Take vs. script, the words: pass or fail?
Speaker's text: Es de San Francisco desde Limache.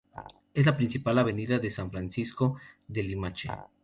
fail